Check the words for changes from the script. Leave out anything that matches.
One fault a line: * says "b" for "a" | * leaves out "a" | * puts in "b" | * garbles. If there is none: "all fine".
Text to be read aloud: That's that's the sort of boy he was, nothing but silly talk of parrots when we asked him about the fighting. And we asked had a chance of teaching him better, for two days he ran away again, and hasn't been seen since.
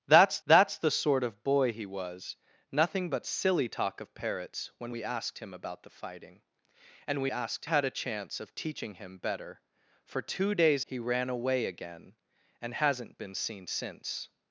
all fine